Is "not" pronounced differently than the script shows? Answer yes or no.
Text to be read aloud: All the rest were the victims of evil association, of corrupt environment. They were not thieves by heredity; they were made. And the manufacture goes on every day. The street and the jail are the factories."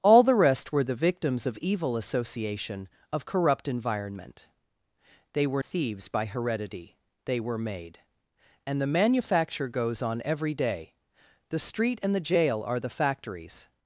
yes